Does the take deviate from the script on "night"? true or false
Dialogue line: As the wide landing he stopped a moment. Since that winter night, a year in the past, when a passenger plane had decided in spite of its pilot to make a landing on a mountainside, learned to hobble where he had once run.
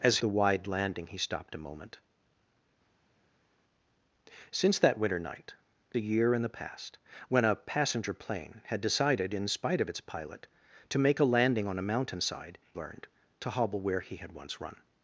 false